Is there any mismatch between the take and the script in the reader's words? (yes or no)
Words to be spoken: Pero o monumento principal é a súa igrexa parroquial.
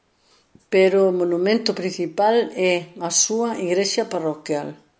no